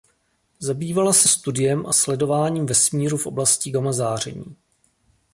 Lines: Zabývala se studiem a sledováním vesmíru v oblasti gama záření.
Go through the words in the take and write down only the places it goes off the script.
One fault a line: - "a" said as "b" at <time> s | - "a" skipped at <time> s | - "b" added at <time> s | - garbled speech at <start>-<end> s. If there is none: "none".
none